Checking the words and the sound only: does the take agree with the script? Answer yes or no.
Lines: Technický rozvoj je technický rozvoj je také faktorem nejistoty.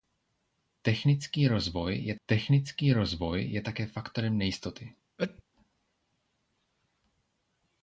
no